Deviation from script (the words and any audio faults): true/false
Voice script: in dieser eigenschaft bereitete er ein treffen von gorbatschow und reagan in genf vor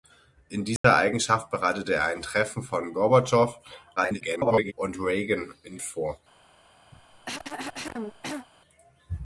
true